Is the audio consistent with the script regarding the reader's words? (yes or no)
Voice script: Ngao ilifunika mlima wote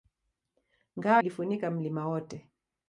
yes